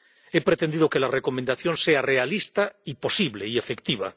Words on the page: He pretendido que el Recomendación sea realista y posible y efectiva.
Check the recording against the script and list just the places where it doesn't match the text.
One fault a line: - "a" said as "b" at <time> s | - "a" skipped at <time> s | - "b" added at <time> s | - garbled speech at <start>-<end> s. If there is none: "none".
- "el" said as "la" at 1.0 s